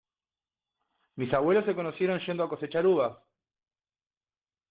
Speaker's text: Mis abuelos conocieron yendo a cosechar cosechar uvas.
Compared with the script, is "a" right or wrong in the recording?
right